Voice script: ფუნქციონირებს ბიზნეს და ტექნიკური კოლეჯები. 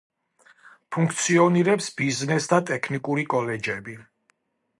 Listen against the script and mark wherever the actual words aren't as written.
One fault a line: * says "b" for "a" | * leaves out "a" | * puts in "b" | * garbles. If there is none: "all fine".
all fine